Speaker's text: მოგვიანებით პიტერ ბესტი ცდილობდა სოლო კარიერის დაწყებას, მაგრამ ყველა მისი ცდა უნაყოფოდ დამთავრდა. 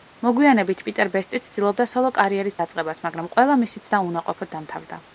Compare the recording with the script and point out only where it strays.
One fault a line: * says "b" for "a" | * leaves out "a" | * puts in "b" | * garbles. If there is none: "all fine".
all fine